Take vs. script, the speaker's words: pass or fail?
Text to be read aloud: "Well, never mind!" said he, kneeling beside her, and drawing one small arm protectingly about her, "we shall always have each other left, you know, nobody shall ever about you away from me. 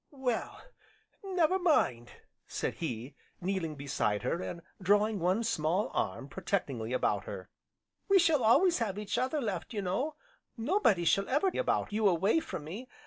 pass